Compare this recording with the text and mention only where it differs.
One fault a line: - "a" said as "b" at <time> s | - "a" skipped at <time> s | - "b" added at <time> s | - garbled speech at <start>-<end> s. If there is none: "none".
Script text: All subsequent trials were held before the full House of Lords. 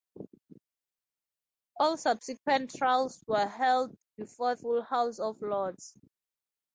- "the" skipped at 4.6 s